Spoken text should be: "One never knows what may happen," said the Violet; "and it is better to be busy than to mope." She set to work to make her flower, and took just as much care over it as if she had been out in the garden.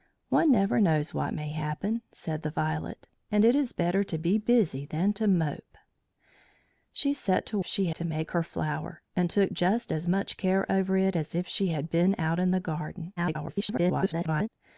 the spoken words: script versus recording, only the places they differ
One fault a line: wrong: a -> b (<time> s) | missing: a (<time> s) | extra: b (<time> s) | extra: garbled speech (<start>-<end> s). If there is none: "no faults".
wrong: work -> she (7.6 s)
extra: garbled speech (13.2-14.5 s)